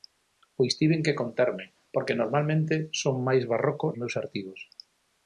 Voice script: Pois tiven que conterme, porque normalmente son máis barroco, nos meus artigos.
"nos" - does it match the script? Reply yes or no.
no